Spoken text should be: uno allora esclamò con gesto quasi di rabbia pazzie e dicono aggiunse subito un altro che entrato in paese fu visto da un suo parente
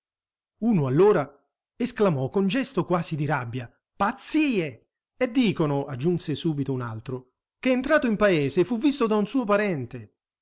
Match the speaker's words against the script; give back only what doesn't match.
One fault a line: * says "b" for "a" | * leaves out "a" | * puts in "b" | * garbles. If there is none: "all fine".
all fine